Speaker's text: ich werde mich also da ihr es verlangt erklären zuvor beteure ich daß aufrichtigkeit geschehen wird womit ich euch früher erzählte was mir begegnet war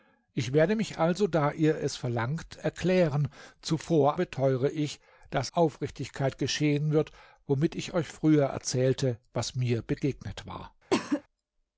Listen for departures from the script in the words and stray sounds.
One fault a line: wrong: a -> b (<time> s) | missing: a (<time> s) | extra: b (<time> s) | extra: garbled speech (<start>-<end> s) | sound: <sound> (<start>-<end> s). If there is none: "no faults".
sound: cough (10.9-11.2 s)